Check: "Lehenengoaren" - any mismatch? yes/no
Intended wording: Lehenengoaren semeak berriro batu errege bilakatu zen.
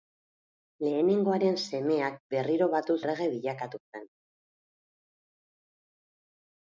no